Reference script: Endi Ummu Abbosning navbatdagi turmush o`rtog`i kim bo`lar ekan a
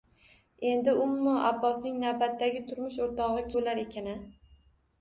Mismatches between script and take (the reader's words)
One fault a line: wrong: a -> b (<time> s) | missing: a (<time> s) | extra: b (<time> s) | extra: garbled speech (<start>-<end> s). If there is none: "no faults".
missing: kim (3.5 s)